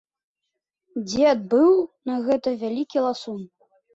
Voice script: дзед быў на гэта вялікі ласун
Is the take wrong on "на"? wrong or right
right